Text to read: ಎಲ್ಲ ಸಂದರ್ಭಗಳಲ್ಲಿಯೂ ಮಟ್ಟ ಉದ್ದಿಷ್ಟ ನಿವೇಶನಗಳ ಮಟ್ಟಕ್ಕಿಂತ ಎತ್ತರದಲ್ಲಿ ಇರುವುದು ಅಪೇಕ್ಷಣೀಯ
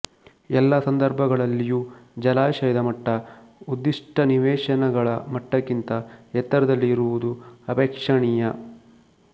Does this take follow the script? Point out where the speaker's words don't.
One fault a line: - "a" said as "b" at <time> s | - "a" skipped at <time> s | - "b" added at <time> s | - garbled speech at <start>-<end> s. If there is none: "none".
- "ಜಲಾಶಯದ" added at 2.2 s